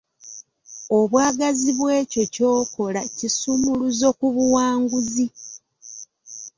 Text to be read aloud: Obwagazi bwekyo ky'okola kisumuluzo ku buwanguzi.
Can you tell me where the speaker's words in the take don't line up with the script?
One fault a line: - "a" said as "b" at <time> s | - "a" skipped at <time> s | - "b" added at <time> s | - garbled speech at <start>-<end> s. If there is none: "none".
none